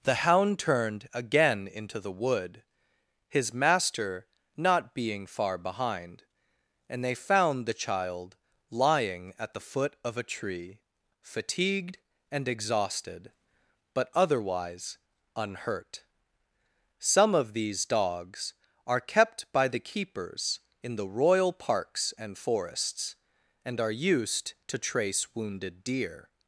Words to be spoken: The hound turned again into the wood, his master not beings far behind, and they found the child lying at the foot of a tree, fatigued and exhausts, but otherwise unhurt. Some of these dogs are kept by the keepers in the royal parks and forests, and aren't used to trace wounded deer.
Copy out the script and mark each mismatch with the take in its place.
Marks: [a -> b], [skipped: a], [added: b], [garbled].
The hound turned again into the wood, his master not [beings -> being] far behind, and they found the child lying at the foot of a tree, fatigued and [exhausts, -> exhausted] but otherwise unhurt. Some of these dogs are kept by the keepers in the royal parks and forests, and [aren't -> are] used to trace wounded deer.